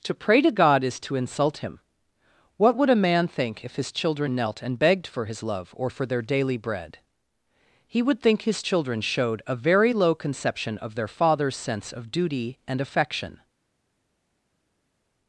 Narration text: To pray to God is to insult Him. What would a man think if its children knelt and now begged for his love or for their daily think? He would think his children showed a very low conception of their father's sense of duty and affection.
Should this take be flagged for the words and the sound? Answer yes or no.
yes